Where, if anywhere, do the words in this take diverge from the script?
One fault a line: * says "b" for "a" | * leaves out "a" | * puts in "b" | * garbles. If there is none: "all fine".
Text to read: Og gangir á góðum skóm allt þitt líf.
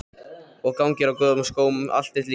all fine